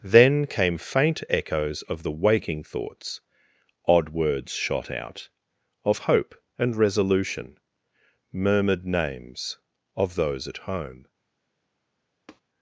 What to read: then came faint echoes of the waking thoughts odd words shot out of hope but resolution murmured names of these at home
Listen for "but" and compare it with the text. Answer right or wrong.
wrong